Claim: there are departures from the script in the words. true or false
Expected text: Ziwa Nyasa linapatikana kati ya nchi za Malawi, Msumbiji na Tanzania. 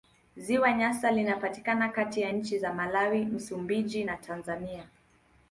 false